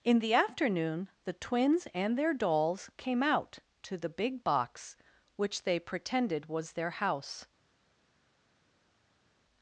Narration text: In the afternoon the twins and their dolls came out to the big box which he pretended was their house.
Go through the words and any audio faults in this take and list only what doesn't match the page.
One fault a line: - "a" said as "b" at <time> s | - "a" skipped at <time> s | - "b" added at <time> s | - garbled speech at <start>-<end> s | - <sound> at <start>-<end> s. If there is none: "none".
- "he" said as "they" at 5.6 s